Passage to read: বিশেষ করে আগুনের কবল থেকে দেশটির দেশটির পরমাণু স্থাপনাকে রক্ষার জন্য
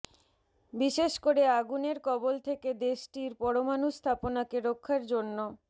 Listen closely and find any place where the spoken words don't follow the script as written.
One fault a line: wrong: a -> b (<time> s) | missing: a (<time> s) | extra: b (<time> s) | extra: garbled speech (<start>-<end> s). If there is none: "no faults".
missing: দেশটির (3.3 s)